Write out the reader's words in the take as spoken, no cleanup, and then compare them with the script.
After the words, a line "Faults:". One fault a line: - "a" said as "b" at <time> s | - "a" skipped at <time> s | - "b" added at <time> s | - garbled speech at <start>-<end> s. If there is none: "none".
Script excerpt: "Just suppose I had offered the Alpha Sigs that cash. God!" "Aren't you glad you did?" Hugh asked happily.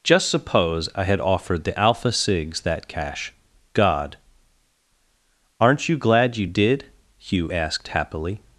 "Just suppose I had offered the Alpha Sigs that cash. God!" "Aren't you glad you did?" Hugh asked happily.
Faults:
none